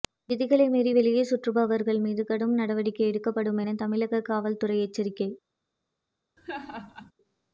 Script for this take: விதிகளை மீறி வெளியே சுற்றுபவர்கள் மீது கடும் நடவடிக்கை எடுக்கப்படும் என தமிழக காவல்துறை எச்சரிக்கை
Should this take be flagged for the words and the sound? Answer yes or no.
yes